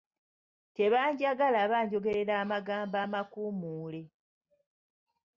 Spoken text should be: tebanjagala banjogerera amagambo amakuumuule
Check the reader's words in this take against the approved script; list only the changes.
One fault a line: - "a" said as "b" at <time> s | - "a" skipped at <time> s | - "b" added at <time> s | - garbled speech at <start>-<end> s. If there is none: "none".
none